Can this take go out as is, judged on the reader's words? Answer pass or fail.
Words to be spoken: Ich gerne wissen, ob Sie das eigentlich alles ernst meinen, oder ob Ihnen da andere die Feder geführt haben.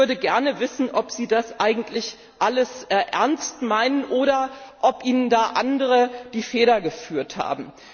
fail